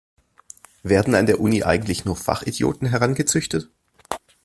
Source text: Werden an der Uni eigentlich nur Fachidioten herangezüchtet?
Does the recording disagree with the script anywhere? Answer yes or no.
no